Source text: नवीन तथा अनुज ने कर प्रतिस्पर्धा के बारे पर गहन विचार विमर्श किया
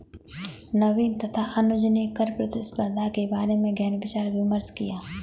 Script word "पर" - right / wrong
wrong